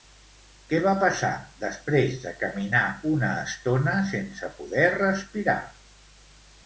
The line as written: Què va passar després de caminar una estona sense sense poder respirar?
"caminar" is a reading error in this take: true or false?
false